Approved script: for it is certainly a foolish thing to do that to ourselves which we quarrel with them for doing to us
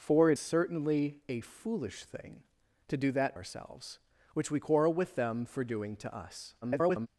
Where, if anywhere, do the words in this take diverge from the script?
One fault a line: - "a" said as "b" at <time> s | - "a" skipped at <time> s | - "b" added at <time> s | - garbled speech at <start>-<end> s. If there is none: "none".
- "is" skipped at 0.4 s
- "to" skipped at 3.4 s
- garbled speech at 6.6-7.1 s